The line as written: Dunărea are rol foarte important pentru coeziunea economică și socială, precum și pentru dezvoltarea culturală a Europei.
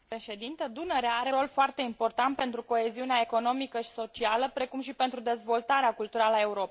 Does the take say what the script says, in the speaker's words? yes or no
yes